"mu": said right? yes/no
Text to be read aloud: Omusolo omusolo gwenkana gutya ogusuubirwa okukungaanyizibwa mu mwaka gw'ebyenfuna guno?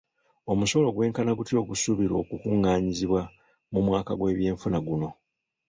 yes